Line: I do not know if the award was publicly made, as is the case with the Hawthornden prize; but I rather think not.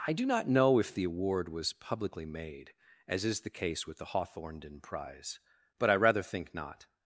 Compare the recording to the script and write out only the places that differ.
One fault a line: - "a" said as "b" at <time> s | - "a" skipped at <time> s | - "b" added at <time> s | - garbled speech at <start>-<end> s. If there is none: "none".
none